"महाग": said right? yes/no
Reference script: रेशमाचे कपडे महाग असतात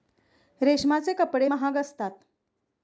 yes